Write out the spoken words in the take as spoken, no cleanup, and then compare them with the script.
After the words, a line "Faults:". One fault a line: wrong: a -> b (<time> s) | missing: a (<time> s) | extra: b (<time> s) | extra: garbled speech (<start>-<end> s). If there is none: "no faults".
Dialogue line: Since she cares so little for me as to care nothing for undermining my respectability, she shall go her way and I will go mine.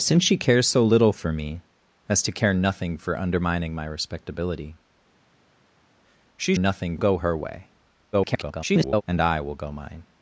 Since she cares so little for me as to care nothing for undermining my respectability, she nothing go her way [garbled] and I will go mine.
Faults:
wrong: shall -> nothing (6.6 s)
extra: garbled speech (8.1-9.0 s)